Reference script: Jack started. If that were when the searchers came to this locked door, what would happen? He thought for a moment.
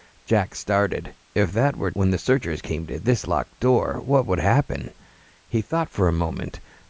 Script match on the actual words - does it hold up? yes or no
yes